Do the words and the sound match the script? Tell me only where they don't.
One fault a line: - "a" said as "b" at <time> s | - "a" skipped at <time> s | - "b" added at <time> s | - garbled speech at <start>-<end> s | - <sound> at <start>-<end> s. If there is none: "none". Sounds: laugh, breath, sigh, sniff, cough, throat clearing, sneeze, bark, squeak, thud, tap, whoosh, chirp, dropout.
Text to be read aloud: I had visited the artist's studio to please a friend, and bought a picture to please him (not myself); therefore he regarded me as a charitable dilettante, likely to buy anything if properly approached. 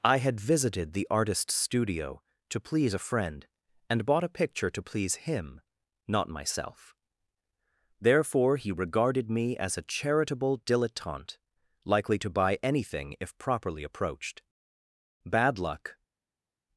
- "Bad luck" added at 15.2 s